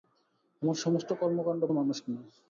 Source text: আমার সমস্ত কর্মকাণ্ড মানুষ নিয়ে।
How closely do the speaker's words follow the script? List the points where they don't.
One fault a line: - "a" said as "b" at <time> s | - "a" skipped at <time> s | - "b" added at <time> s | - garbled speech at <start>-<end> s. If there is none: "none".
none